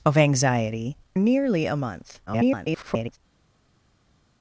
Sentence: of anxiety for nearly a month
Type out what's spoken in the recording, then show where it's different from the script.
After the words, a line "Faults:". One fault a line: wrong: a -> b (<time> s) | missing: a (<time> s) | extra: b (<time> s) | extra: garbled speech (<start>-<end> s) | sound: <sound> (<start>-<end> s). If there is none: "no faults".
of anxiety nearly a month [garbled]
Faults:
missing: for (1.0 s)
extra: garbled speech (2.3-3.2 s)